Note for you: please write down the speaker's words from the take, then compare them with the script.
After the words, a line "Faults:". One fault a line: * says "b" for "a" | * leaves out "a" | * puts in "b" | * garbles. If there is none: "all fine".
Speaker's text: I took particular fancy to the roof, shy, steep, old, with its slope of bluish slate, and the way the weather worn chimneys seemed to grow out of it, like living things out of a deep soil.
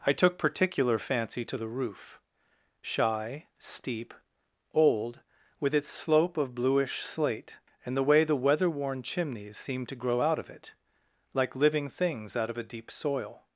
I took particular fancy to the roof, shy, steep, old, with its slope of bluish slate, and the way the weather worn chimneys seemed to grow out of it, like living things out of a deep soil.
Faults:
all fine